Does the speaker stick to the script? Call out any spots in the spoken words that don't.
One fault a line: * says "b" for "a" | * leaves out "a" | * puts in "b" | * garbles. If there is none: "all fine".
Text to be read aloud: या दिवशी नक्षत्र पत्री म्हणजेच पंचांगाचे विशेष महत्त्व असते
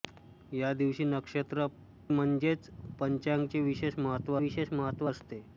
* leaves out "पत्री"
* puts in "विशेष महत्त्व"